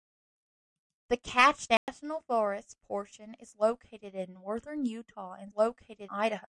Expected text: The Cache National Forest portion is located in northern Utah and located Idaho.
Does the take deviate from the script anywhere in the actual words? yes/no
no